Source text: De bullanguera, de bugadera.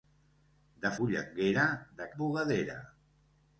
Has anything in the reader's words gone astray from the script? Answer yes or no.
no